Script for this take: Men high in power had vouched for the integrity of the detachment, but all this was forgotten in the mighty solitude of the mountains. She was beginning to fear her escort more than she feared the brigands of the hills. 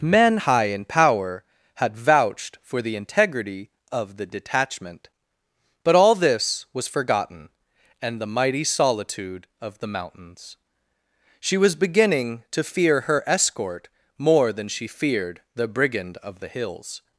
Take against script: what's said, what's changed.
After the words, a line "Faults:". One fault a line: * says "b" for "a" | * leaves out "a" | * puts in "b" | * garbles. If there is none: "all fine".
Men high in power had vouched for the integrity of the detachment, but all this was forgotten and the mighty solitude of the mountains. She was beginning to fear her escort more than she feared the brigand of the hills.
Faults:
* says "and" for "in"
* says "brigand" for "brigands"